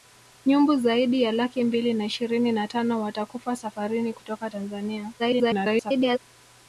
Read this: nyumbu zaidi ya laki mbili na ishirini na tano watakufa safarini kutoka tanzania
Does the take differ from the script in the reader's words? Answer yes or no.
yes